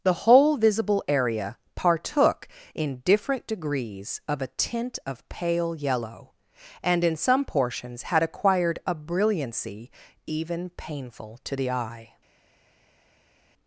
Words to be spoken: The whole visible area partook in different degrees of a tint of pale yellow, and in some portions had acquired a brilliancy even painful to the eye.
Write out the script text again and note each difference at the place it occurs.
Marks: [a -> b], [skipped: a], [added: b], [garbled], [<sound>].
The whole visible area partook in different degrees of a tint of pale yellow, and in some portions had acquired a brilliancy even painful to the eye.